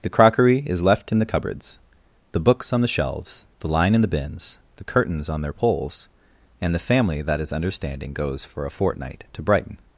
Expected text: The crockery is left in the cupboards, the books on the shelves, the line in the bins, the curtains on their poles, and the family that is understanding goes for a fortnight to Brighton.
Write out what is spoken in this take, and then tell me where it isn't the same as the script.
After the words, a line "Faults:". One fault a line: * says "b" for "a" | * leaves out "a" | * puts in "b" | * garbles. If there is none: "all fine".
The crockery is left in the cupboards, the books on the shelves, the line in the bins, the curtains on their poles, and the family that is understanding goes for a fortnight to Brighton.
Faults:
all fine